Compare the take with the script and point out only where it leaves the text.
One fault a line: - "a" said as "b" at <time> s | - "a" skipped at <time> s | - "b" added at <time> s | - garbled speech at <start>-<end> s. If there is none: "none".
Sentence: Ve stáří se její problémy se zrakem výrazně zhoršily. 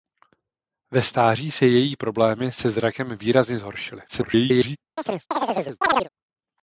- garbled speech at 4.1-4.8 s